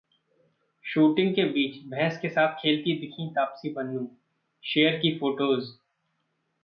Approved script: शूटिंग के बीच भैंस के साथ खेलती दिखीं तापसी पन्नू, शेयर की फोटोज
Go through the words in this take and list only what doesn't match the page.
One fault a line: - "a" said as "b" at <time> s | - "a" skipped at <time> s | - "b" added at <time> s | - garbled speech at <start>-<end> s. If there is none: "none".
none